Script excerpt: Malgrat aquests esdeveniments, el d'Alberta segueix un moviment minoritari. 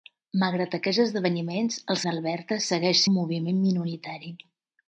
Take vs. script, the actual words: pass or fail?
pass